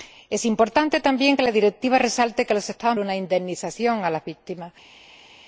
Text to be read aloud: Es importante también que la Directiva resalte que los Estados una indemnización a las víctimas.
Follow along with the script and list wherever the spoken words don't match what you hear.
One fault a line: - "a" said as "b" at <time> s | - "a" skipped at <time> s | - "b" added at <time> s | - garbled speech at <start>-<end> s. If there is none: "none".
none